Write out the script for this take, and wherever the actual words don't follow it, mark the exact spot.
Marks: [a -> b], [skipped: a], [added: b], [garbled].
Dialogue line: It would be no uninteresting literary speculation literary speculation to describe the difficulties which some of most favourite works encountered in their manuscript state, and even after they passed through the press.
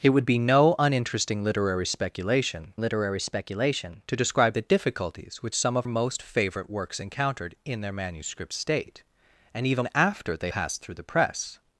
It would be no uninteresting literary speculation literary speculation to describe the difficulties which some of most favourite works encountered in their manuscript state, and even after they passed through the press.